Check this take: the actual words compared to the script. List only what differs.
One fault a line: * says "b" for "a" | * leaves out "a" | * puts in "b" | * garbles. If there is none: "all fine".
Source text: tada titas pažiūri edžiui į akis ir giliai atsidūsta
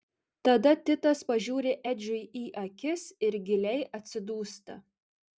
all fine